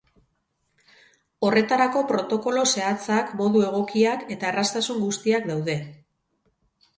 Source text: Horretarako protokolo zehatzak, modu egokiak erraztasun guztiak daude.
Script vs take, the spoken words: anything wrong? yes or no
yes